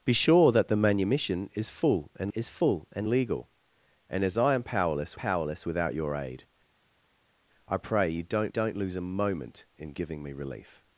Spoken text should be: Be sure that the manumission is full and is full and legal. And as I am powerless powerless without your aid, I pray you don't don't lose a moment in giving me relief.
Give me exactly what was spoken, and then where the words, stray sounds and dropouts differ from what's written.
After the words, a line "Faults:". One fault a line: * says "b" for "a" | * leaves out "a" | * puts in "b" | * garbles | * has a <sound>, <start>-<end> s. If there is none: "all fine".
Be sure that the manumission is full and is full and legal. And as I am powerless powerless without your aid, I pray you don't don't lose a moment in giving me relief.
Faults:
all fine